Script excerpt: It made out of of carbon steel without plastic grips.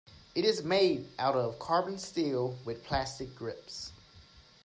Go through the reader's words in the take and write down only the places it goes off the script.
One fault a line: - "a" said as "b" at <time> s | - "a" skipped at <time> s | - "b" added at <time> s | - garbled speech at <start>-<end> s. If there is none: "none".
- "is" added at 0.5 s
- "of" skipped at 1.6 s
- "without" said as "with" at 2.7 s